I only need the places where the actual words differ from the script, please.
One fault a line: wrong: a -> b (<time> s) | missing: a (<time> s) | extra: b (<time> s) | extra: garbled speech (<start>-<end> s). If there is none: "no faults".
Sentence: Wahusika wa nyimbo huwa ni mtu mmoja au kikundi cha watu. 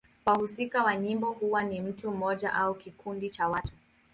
no faults